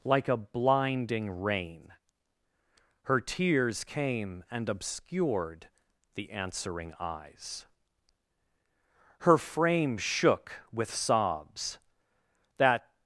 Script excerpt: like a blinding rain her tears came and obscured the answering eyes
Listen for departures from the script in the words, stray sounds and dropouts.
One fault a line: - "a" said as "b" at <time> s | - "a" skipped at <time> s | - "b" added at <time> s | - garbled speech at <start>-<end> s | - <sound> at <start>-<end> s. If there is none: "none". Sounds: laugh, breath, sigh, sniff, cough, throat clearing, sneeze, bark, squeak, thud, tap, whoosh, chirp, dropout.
- "her frame shook with sobs that" added at 9.2 s